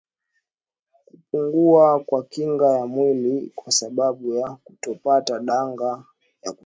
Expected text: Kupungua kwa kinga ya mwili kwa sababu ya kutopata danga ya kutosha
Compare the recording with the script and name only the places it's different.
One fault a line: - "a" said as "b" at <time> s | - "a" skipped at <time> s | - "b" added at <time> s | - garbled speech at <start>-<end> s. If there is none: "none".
none